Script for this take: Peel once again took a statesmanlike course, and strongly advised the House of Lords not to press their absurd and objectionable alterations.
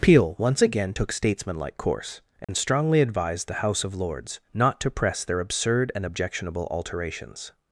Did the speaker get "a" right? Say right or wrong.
wrong